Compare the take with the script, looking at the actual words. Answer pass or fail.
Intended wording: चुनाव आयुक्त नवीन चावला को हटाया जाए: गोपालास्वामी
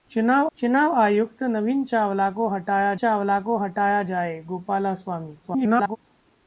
fail